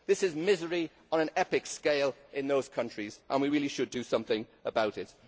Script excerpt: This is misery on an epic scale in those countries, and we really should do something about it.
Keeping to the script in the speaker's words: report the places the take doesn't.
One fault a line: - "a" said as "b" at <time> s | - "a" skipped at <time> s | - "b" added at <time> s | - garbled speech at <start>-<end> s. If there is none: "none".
none